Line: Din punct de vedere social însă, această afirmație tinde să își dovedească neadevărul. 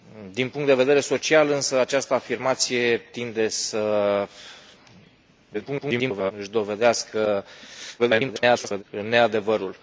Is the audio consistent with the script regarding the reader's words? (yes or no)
no